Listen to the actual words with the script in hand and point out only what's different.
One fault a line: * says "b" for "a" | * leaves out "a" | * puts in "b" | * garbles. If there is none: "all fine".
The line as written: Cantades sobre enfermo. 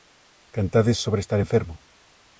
* puts in "estar"